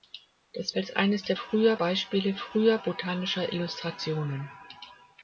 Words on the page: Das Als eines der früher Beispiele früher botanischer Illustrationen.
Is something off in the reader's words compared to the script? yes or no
no